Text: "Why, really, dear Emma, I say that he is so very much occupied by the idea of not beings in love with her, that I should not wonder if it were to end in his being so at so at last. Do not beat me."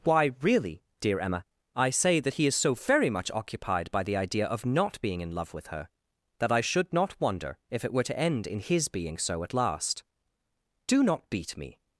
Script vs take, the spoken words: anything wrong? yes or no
yes